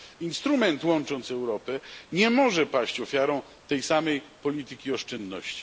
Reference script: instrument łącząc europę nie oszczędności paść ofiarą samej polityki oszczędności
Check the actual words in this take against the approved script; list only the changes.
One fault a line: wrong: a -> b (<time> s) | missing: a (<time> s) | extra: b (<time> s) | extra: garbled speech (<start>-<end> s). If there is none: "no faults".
wrong: oszczędności -> może (2.3 s)
extra: tej (3.7 s)